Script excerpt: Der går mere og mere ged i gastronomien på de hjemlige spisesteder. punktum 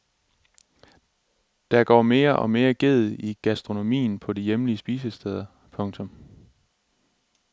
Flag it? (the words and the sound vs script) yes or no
no